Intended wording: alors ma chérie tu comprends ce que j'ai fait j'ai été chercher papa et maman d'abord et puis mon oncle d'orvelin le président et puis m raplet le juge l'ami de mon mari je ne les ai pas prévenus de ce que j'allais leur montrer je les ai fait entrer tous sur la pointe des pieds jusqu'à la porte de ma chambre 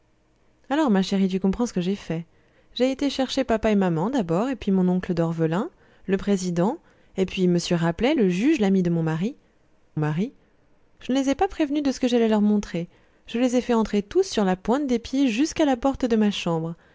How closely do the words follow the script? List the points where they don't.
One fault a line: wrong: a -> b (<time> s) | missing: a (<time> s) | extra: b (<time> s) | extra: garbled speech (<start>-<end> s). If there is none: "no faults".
extra: mari (10.0 s)